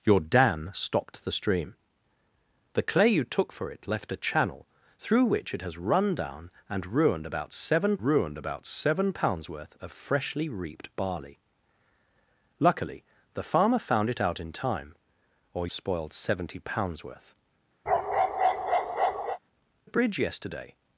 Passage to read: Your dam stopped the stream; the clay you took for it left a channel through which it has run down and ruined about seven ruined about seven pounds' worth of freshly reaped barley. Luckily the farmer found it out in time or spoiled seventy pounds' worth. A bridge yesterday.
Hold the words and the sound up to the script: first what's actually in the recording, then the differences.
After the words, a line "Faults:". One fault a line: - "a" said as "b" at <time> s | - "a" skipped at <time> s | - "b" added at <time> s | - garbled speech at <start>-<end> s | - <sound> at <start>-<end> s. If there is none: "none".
Your dam stopped the stream; the clay you took for it left a channel through which it has run down and ruined about seven ruined about seven pounds' worth of freshly reaped barley. Luckily the farmer found it out in time or spoiled seventy pounds' worth. A bridge yesterday.
Faults:
- bark at 17.9-19.4 s